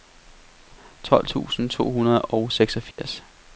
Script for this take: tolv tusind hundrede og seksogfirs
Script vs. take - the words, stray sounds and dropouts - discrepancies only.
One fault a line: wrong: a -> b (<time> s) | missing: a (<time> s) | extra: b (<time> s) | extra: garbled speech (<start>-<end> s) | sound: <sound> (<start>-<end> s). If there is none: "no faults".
extra: to (1.7 s)
sound: dropout (2.9-3.0 s)